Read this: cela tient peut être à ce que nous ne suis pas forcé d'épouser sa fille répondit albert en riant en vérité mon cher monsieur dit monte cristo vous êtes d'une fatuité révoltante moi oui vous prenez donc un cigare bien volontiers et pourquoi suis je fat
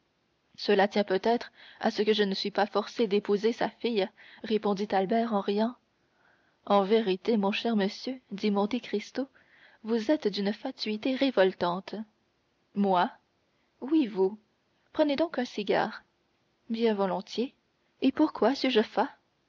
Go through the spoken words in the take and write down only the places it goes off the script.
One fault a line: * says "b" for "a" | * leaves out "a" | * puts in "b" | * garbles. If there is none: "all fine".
* says "je" for "nous"